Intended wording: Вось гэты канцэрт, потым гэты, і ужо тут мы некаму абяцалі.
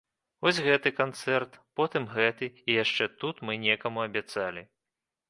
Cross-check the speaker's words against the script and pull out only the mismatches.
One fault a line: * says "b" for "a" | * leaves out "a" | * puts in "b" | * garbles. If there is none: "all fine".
* says "яшчэ" for "ужо"